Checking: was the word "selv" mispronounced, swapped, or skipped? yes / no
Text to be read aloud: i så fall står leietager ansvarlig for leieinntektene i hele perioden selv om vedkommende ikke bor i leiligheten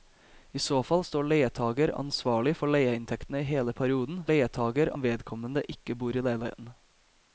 yes